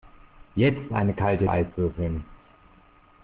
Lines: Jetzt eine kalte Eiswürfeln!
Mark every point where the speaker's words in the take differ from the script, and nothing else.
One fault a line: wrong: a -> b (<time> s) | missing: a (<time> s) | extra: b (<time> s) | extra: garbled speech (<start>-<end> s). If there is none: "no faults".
no faults